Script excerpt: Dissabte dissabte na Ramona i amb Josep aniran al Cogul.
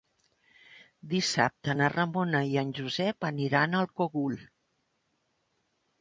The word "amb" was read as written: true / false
false